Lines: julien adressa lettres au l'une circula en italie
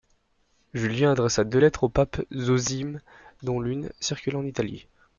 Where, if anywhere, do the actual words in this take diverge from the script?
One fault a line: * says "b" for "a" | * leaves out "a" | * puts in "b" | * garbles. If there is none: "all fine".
* puts in "deux"
* puts in "pape zosime dont"